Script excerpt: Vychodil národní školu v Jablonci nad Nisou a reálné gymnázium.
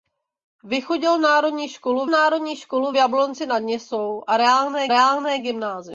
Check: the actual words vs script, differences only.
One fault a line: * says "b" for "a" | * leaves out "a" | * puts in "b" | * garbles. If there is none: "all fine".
* puts in "národní školu"
* puts in "reálné"